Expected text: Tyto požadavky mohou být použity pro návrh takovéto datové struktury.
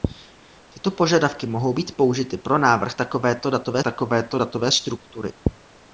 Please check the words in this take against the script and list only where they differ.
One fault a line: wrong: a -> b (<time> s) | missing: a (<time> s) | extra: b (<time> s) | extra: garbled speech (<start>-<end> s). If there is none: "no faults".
extra: takovéto datové (3.8 s)